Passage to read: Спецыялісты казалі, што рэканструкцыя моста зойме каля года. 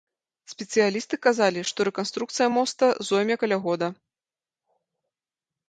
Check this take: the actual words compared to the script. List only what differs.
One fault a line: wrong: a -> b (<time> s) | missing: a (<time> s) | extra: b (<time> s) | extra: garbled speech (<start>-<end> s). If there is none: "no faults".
no faults